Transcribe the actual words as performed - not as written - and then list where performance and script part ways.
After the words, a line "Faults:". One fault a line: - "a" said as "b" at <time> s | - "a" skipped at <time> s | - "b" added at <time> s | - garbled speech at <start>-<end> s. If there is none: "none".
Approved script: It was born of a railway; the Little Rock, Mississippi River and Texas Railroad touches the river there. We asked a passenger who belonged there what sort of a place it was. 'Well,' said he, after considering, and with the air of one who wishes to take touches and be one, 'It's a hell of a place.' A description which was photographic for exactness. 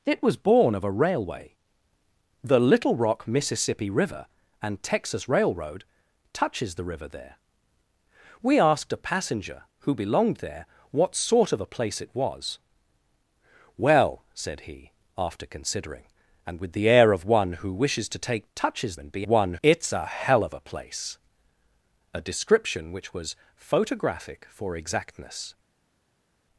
It was born of a railway; the Little Rock, Mississippi River and Texas Railroad touches the river there. We asked a passenger who belonged there what sort of a place it was. 'Well,' said he, after considering, and with the air of one who wishes to take touches and be one, 'It's a hell of a place.' A description which was photographic for exactness.
Faults:
none